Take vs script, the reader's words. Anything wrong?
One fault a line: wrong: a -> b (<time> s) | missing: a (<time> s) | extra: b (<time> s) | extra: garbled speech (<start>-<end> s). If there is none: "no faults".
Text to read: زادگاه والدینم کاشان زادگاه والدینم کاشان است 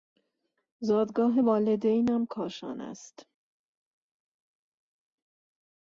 missing: زادگاه والدینم کاشان (2.8 s)